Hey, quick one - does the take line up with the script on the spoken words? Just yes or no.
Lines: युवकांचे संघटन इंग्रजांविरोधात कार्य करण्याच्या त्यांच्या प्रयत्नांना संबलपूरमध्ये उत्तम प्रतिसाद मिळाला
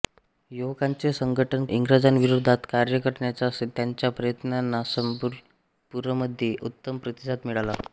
yes